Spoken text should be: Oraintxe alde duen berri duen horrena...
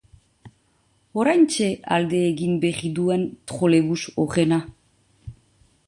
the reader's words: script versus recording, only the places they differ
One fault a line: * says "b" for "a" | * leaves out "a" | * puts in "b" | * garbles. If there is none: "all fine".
* says "egin" for "duen"
* puts in "trolebus"